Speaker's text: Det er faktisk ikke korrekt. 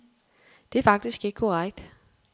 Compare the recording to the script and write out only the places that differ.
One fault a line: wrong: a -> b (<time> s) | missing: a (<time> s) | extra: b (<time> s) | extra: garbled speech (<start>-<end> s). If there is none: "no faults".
no faults